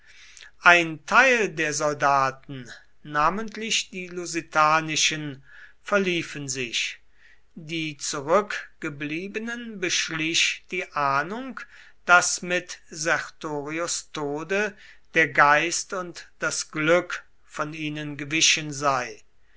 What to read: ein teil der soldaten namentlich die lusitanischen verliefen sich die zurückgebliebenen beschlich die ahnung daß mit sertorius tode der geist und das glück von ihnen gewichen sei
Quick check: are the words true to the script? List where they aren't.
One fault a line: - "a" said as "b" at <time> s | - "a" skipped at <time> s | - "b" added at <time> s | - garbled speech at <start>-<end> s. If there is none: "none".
none